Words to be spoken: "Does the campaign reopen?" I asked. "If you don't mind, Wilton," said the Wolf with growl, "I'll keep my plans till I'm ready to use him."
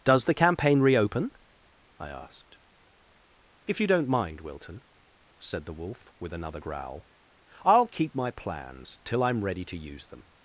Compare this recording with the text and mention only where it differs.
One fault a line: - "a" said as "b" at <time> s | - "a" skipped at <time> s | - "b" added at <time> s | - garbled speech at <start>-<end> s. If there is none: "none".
- "another" added at 6.3 s
- "him" said as "them" at 10.1 s